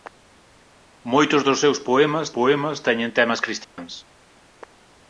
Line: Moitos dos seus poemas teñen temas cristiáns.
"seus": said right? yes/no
yes